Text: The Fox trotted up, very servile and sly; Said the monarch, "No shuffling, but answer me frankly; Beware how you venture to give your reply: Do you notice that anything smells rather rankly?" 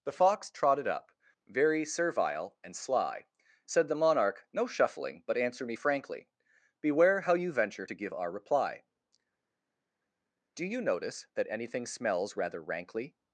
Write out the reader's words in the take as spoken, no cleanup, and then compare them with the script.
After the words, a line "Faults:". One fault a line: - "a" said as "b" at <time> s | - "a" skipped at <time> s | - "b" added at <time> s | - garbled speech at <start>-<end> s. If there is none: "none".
The Fox trotted up, very servile and sly; Said the monarch, "No shuffling, but answer me frankly; Beware how you venture to give our reply: Do you notice that anything smells rather rankly?"
Faults:
- "your" said as "our" at 8.1 s